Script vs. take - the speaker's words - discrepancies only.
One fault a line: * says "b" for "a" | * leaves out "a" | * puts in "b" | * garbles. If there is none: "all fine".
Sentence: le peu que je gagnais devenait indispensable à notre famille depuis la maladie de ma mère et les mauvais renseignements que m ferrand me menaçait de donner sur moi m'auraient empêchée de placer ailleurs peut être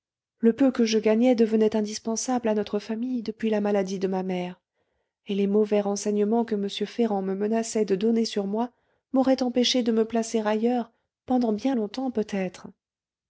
* puts in "me"
* puts in "pendant bien longtemps"